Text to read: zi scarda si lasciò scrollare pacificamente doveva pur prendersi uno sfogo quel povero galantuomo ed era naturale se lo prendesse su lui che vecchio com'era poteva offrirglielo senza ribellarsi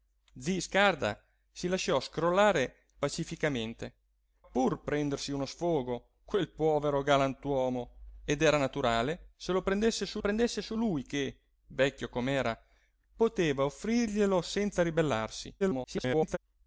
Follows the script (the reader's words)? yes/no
no